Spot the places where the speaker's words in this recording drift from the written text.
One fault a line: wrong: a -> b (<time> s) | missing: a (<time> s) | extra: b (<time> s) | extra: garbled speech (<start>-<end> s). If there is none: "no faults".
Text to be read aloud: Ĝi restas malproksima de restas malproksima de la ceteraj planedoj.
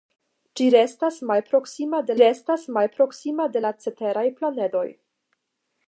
no faults